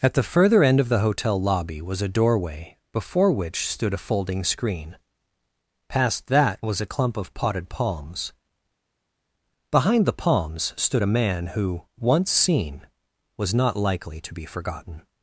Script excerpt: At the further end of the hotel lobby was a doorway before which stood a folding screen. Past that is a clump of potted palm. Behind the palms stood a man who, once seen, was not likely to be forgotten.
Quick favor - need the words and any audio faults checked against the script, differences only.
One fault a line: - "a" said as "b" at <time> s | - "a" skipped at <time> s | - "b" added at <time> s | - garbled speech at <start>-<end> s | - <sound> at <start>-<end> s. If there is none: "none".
- "is" said as "was" at 6.6 s
- "palm" said as "palms" at 7.7 s